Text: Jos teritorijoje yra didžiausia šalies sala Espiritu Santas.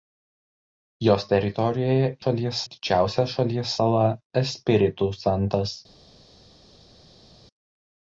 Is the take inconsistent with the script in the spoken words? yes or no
yes